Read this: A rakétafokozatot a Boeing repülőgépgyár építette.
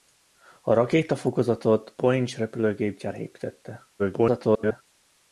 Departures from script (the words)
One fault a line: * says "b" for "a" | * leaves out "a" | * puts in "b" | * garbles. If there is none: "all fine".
* leaves out "a"
* garbles